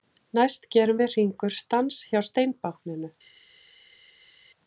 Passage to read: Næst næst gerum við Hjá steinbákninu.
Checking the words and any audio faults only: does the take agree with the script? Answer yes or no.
no